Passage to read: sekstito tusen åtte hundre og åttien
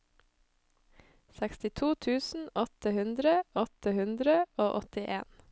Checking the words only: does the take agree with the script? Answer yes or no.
no